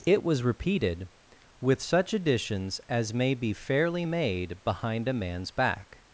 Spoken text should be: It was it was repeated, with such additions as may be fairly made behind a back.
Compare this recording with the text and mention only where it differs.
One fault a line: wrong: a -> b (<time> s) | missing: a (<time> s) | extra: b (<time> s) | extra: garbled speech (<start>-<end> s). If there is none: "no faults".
missing: it was (0.4 s)
extra: man's (5.1 s)